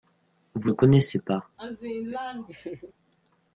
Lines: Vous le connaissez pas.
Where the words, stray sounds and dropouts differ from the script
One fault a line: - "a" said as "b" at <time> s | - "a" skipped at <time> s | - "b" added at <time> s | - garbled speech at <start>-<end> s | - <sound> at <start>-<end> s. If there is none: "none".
- laugh at 1.6-2.9 s